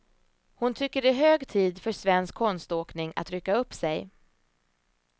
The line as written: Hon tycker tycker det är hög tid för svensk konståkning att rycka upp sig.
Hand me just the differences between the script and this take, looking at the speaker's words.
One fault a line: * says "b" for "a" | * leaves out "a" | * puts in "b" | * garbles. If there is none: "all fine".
* leaves out "tycker"